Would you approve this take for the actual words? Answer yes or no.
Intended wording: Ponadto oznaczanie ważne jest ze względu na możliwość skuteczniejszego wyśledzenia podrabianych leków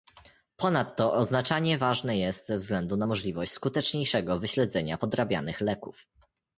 yes